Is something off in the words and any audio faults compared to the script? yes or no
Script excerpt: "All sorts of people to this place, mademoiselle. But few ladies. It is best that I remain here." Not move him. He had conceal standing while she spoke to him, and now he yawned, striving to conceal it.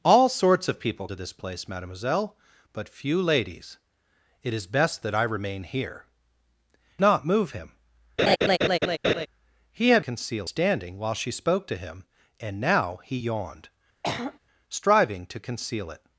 yes